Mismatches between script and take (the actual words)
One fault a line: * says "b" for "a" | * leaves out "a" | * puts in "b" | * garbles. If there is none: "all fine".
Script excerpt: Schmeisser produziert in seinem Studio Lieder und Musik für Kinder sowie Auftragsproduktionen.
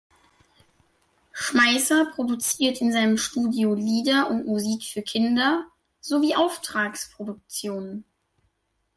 all fine